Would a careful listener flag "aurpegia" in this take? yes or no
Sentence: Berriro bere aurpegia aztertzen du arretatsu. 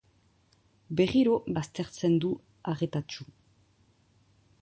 yes